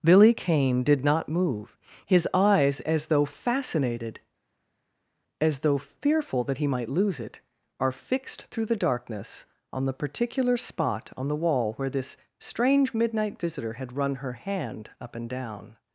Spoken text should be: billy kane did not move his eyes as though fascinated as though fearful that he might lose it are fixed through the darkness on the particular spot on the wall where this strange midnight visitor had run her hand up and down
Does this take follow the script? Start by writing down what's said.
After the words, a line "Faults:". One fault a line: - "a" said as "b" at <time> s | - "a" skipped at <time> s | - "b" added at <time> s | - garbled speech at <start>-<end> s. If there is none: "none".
billy kane did not move his eyes as though fascinated as though fearful that he might lose it are fixed through the darkness on the particular spot on the wall where this strange midnight visitor had run her hand up and down
Faults:
none